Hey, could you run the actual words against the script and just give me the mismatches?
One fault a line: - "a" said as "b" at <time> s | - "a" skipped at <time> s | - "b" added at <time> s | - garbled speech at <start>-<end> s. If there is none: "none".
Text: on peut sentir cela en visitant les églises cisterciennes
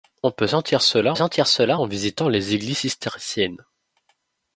- "sentir cela" added at 1.1 s